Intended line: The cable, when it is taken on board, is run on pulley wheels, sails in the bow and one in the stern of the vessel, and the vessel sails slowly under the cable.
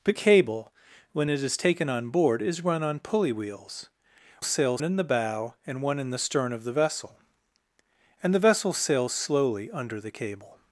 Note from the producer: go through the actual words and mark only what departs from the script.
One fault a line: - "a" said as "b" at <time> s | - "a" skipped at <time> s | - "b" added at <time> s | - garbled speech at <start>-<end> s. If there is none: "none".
none